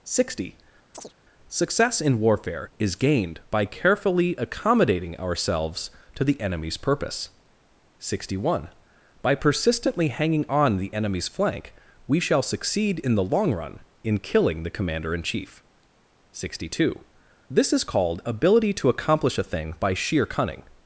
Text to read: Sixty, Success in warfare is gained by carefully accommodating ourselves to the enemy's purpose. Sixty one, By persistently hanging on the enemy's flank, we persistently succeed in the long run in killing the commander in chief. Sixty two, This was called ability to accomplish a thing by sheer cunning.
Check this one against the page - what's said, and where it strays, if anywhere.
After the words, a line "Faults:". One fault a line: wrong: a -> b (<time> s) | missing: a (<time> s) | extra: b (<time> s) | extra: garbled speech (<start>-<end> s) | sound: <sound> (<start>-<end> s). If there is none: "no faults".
Sixty, Success in warfare is gained by carefully accommodating ourselves to the enemy's purpose. Sixty one, By persistently hanging on the enemy's flank, we shall succeed in the long run in killing the commander in chief. Sixty two, This is called ability to accomplish a thing by sheer cunning.
Faults:
sound: chirp (0.9-1.1 s)
wrong: persistently -> shall (12.2 s)
wrong: was -> is (17.7 s)